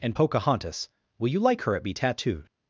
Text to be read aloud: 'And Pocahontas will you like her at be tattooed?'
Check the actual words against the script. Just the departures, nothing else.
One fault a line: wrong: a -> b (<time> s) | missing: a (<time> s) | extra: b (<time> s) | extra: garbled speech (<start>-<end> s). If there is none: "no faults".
no faults